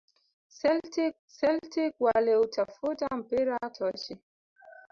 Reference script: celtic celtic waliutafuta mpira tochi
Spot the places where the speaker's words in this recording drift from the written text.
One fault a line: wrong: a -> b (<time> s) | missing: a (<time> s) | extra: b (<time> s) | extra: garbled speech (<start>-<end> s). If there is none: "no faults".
no faults